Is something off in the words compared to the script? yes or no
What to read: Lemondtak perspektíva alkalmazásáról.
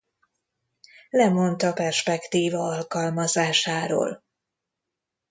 no